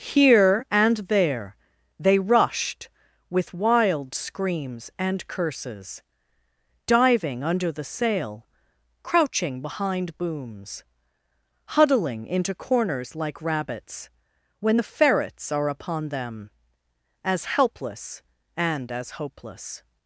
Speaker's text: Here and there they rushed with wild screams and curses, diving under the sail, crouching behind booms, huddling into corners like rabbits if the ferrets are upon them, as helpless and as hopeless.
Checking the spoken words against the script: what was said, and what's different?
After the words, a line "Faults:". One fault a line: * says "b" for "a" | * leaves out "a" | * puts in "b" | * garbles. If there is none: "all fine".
Here and there they rushed with wild screams and curses, diving under the sail, crouching behind booms, huddling into corners like rabbits when the ferrets are upon them, as helpless and as hopeless.
Faults:
* says "when" for "if"